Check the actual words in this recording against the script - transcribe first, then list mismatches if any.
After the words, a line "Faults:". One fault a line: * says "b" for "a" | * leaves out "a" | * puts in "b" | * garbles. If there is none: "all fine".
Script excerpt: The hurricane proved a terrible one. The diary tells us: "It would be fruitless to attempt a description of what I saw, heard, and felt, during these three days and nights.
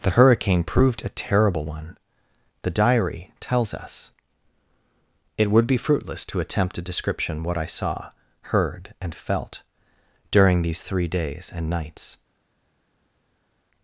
The hurricane proved a terrible one. The diary tells us: "It would be fruitless to attempt a description what I saw, heard, and felt, during these three days and nights.
Faults:
* leaves out "of"